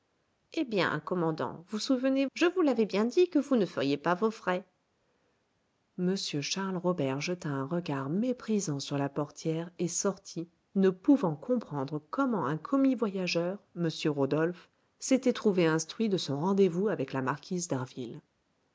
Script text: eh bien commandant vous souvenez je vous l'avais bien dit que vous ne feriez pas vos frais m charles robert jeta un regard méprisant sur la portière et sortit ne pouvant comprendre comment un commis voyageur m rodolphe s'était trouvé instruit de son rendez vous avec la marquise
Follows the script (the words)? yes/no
yes